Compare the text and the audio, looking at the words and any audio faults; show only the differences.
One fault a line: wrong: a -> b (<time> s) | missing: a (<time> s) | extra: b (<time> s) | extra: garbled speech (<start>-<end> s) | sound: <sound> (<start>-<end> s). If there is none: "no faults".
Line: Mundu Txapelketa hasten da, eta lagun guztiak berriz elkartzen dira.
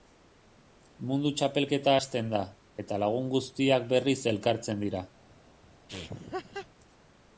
sound: laugh (5.9-6.7 s)